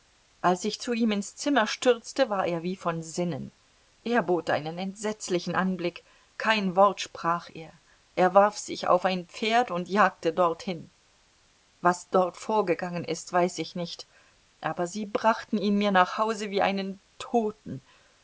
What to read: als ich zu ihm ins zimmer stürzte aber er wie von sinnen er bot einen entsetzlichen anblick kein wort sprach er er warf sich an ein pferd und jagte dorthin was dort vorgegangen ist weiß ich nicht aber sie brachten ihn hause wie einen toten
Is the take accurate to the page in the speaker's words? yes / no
no